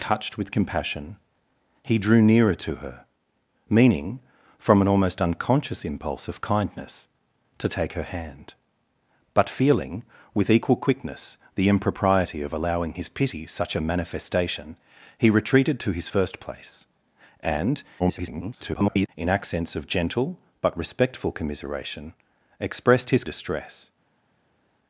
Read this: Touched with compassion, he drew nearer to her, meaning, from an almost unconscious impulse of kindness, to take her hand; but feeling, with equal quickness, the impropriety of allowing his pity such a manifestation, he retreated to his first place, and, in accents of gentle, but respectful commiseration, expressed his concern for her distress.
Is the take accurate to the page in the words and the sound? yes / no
no